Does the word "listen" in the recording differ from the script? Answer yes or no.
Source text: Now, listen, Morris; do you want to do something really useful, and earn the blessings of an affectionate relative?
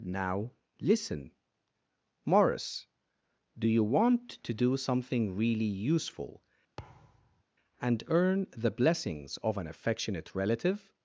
no